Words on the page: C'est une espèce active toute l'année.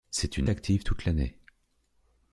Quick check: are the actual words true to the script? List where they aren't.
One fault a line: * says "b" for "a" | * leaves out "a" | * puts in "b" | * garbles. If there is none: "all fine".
* leaves out "espèce"